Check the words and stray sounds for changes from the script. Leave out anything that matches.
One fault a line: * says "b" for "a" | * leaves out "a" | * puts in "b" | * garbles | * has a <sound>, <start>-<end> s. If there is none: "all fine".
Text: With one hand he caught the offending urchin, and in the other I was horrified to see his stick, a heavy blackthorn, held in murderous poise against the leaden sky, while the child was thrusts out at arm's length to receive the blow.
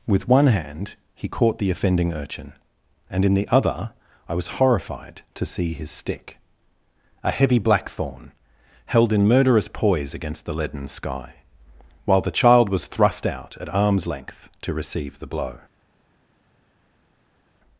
* says "thrust" for "thrusts"